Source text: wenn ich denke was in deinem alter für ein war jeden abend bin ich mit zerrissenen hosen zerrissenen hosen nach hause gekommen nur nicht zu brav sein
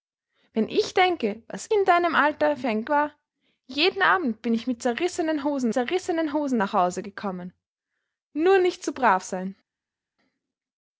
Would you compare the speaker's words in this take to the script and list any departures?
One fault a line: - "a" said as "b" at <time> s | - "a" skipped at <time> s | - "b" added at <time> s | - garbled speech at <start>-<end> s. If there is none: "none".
none